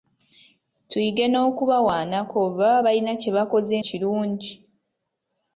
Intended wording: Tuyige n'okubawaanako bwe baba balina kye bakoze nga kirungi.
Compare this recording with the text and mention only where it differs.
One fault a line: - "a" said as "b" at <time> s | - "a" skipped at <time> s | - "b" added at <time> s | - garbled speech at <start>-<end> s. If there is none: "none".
- "nga" skipped at 3.8 s